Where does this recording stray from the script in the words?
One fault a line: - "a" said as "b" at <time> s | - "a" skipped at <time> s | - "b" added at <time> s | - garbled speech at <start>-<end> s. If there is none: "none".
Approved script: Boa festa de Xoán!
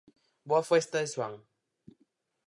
none